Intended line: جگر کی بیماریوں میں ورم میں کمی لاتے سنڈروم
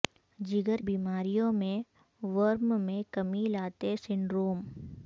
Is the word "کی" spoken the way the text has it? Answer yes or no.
no